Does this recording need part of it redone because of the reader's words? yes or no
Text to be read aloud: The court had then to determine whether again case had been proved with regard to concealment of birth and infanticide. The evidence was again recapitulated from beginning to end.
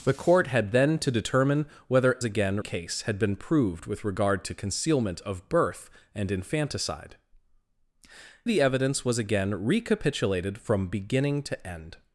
no